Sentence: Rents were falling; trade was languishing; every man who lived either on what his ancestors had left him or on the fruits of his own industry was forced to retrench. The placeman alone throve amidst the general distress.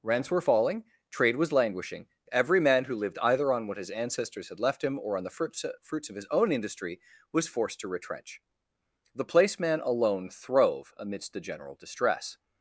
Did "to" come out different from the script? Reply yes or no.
no